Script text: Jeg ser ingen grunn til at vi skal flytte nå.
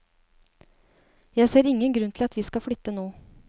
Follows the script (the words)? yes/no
yes